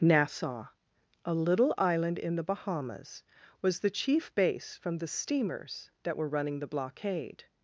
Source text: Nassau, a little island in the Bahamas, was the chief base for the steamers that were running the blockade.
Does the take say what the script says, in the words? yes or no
no